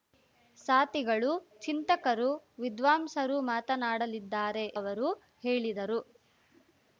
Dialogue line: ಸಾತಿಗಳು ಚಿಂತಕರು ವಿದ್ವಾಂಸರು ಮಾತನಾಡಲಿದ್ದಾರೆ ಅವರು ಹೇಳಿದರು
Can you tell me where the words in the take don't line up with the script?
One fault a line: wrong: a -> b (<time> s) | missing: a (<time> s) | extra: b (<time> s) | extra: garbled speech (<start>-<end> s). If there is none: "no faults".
no faults